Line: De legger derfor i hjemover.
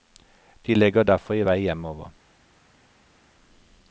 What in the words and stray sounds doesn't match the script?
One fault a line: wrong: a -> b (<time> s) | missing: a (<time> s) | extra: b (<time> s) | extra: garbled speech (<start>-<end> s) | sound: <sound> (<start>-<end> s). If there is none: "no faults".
extra: vei (1.4 s)